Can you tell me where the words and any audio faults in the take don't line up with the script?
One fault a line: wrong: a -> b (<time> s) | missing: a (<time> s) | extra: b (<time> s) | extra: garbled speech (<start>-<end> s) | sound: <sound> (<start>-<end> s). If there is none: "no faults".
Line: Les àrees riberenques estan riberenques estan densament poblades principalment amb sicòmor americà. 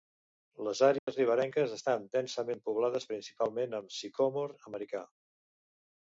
sound: dropout (1.0-1.1 s)
missing: riberenques estan (2.1 s)